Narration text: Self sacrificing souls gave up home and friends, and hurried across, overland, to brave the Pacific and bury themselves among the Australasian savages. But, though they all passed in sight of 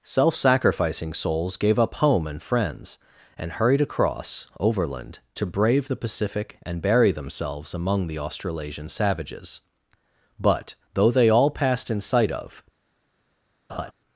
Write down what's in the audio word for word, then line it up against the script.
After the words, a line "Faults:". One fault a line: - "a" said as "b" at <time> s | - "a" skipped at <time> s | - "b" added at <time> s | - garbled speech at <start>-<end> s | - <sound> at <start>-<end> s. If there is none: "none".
Self sacrificing souls gave up home and friends, and hurried across, overland, to brave the Pacific and bury themselves among the Australasian savages. But, though they all passed in sight of
Faults:
- laugh at 13.7-13.9 s